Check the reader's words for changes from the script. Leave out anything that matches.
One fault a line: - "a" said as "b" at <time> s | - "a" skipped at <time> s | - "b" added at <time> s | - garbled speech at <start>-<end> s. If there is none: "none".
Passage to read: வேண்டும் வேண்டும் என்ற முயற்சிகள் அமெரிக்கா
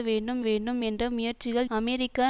none